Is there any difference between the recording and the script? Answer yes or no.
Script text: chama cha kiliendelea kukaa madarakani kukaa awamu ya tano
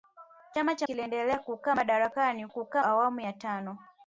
no